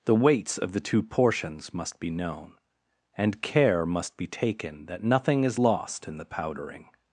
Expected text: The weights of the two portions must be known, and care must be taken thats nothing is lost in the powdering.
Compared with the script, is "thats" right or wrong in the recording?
wrong